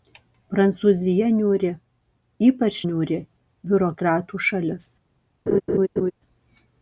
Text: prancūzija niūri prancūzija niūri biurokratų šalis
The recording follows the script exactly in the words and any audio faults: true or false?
false